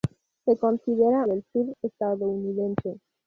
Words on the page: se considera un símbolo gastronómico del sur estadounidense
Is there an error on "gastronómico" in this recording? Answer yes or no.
yes